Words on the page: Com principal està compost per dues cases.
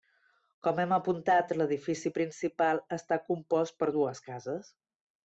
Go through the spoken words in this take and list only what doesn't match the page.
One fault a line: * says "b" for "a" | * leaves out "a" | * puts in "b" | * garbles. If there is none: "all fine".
* puts in "hem apuntat l'edifici"